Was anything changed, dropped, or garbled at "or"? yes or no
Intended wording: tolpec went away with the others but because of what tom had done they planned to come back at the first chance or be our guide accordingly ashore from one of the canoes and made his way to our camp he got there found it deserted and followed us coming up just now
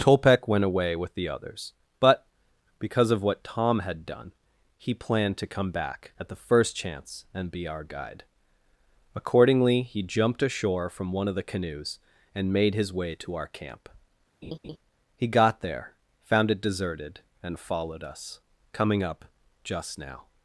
yes